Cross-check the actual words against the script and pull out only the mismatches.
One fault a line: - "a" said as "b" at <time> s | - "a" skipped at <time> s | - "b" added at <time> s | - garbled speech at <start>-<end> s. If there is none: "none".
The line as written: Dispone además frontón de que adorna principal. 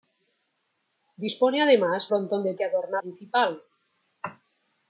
none